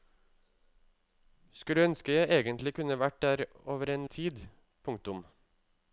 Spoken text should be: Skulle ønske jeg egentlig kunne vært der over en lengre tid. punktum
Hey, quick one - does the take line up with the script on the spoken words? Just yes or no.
no